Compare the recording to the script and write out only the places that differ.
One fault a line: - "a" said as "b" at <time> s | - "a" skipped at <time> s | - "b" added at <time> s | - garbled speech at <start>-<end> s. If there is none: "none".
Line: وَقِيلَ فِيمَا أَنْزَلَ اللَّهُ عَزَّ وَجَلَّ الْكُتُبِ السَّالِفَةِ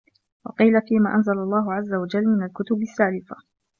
- "مِنْ" added at 2.3 s